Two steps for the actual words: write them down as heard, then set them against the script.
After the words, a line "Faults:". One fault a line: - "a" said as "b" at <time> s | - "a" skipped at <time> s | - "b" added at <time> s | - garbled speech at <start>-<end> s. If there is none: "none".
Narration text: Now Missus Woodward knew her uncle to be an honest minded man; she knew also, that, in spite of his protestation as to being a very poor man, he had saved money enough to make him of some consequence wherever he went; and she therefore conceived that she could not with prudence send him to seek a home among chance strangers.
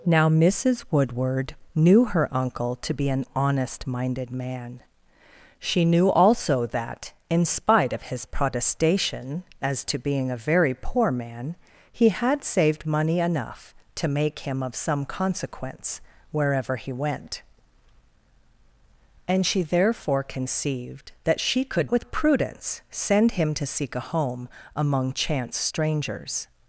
Now Missus Woodward knew her uncle to be an honest minded man; she knew also, that, in spite of his protestation as to being a very poor man, he had saved money enough to make him of some consequence wherever he went; and she therefore conceived that she could with prudence send him to seek a home among chance strangers.
Faults:
- "not" skipped at 21.9 s